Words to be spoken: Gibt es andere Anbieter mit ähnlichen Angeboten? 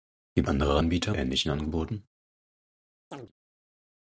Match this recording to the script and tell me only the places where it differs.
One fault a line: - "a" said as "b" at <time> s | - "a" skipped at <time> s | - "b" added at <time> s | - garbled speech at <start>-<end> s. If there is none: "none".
- "es" skipped at 0.5 s
- "mit" skipped at 1.1 s